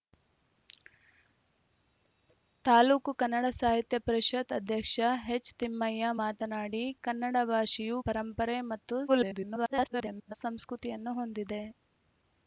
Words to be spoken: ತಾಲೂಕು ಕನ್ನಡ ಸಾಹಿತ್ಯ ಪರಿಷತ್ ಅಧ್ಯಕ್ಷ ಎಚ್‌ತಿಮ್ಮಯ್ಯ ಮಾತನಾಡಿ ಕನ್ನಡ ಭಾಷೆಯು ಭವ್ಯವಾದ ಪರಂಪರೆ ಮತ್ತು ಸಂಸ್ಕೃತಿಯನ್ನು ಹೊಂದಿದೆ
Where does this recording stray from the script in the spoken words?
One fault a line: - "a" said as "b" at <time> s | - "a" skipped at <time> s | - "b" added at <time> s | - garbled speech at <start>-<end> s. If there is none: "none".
- "ಭವ್ಯವಾದ" skipped at 8.0 s
- garbled speech at 9.1-10.3 s